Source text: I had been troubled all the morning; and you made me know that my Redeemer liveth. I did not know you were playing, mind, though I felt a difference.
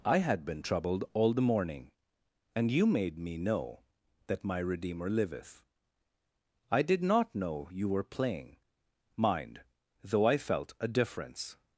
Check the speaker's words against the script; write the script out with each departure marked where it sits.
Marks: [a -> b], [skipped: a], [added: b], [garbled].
I had been troubled all the morning; and you made me know that my Redeemer liveth. I did not know you were playing, mind, though I felt a difference.